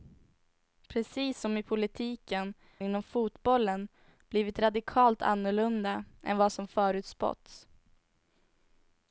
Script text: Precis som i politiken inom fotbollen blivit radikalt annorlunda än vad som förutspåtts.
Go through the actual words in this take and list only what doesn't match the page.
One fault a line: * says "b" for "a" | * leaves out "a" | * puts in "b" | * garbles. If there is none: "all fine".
all fine